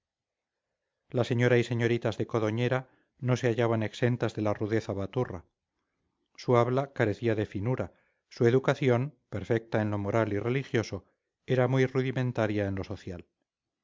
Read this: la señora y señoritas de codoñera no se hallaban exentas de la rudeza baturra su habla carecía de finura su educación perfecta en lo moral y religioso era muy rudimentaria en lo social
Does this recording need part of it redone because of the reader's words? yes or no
no